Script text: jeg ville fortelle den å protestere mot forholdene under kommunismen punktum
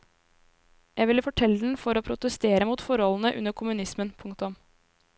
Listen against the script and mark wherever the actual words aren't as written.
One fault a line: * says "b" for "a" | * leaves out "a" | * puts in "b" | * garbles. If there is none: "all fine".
* puts in "for"